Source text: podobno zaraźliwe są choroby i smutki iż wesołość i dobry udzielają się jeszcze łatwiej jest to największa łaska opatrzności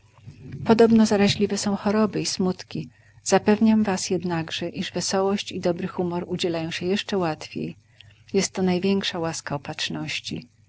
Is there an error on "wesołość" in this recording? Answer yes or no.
no